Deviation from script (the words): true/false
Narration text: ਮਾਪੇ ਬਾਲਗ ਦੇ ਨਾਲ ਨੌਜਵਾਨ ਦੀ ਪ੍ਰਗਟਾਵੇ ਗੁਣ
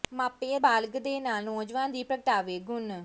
false